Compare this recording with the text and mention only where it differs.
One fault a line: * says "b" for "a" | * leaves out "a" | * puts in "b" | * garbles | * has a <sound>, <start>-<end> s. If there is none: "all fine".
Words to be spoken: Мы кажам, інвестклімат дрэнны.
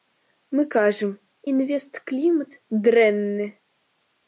all fine